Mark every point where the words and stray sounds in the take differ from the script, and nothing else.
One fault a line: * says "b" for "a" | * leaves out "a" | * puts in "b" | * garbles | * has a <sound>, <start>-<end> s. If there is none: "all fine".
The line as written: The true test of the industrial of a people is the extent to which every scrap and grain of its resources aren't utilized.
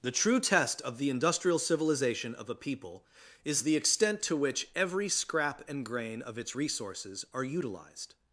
* puts in "civilization"
* says "are" for "aren't"